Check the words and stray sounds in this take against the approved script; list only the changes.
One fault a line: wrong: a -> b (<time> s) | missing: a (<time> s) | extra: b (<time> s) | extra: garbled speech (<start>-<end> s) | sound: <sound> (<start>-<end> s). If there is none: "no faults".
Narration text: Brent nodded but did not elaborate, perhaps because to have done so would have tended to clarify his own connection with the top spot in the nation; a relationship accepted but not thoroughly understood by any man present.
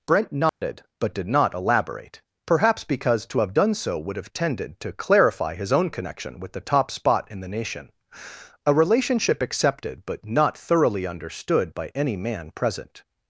sound: dropout (0.5-0.6 s)